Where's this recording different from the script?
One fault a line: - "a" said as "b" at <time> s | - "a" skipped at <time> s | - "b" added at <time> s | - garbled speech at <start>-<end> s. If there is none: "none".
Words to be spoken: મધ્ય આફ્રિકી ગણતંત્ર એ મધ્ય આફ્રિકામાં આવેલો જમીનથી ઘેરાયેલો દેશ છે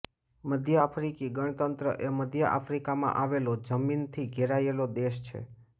none